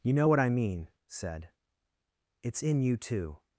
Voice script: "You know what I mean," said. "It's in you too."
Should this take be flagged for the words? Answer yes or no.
no